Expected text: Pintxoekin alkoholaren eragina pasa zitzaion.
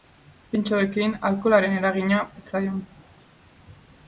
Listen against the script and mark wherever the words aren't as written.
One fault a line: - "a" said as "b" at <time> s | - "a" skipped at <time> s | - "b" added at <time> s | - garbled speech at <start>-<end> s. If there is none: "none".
- "pasa" skipped at 2.2 s